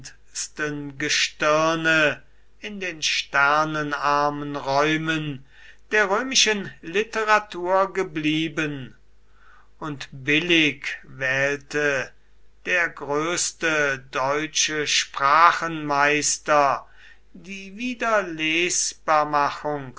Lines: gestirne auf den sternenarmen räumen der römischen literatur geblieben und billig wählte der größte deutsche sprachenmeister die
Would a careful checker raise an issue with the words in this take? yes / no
yes